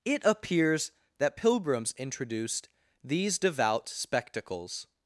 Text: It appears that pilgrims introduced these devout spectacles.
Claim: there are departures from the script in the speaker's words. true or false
false